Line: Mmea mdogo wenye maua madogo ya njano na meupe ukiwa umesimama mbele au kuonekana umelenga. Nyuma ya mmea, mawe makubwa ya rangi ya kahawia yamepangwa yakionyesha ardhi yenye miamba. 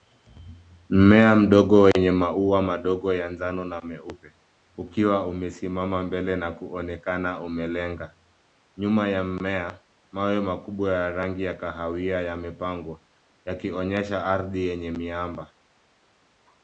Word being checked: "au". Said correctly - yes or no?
no